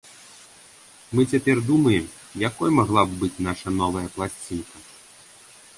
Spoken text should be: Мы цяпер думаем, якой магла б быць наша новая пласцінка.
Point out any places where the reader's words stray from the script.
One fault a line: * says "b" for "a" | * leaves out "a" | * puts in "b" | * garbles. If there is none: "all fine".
all fine